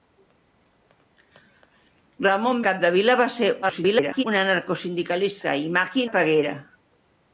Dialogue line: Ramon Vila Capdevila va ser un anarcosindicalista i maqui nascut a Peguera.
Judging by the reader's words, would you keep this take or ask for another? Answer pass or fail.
fail